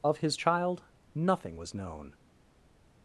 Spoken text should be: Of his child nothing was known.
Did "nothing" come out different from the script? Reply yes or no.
no